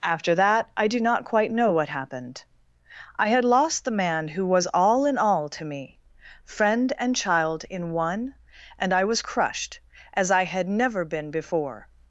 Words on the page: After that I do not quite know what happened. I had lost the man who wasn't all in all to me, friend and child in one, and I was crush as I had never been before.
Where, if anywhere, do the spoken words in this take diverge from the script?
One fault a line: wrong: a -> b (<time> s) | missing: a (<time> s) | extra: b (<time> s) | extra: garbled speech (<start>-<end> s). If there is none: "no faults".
wrong: wasn't -> was (4.5 s)
wrong: crush -> crushed (9.2 s)